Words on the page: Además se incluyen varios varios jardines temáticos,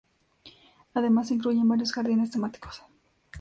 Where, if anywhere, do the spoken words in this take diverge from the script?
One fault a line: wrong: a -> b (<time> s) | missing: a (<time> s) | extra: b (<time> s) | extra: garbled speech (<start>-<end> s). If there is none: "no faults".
missing: varios (1.9 s)